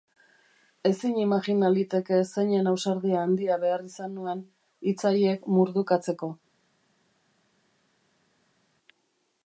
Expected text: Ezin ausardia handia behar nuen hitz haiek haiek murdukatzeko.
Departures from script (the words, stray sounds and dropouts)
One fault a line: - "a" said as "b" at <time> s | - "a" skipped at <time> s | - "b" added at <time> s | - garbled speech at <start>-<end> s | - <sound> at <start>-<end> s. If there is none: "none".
- "imajina liteke zeinen" added at 1.2 s
- "izan" added at 3.9 s
- "haiek" skipped at 5.5 s